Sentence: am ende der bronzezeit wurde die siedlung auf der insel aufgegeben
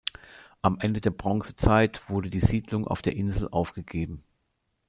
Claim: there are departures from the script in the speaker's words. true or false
false